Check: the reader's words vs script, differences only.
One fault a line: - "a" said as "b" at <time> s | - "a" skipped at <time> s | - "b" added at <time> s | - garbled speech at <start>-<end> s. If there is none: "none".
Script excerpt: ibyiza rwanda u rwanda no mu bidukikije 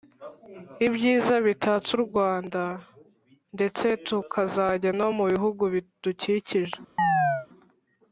- "rwanda" said as "bitatse" at 1.4 s
- "ndetse tukazajya" added at 3.6 s
- "bihugu" added at 5.3 s